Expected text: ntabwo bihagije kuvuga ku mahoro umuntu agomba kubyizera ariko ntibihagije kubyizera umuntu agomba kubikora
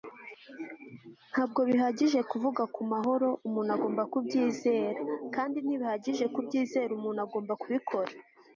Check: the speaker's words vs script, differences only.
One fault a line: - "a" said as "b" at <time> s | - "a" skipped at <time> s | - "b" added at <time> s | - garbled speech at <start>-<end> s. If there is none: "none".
- "ariko" said as "kandi" at 5.3 s